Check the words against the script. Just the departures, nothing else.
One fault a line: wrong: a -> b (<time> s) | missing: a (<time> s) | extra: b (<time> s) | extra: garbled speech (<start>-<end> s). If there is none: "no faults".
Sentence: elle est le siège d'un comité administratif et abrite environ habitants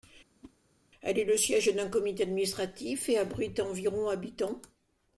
no faults